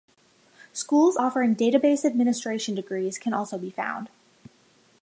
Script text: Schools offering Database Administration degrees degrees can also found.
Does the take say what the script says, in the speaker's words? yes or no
no